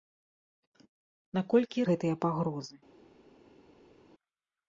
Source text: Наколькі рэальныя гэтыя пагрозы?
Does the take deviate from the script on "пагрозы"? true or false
false